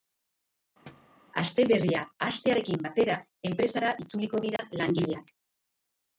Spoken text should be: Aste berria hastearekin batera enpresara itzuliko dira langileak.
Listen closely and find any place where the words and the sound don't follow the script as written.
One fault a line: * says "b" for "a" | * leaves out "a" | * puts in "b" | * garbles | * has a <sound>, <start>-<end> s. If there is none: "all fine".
* has a thud, 0.9-1.2 s
* has a dropout, 4.6-4.6 s